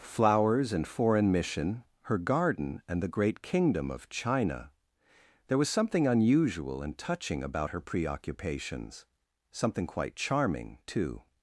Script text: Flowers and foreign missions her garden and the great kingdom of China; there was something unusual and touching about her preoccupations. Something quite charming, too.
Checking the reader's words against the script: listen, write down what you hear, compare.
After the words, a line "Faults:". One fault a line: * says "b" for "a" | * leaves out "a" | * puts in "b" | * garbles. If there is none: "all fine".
Flowers and foreign mission her garden and the great kingdom of China; there was something unusual and touching about her preoccupations. Something quite charming, too.
Faults:
* says "mission" for "missions"